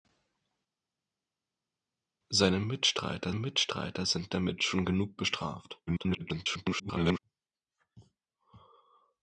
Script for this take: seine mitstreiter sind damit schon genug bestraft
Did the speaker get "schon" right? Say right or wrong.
right